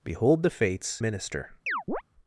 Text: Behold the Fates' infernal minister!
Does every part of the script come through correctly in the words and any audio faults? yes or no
no